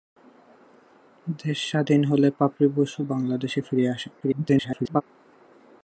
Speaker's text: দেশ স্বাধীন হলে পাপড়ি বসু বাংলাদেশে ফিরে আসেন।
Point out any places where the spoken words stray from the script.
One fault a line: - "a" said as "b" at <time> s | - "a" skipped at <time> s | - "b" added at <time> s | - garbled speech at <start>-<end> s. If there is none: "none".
- garbled speech at 4.2-5.0 s